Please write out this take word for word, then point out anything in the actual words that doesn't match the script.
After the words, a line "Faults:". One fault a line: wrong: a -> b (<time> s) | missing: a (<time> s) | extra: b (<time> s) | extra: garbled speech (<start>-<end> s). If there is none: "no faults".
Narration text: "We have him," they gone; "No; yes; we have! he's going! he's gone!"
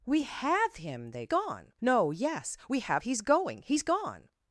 "We have him," they gone; "No; yes; we have! he's going! he's gone!"
Faults:
no faults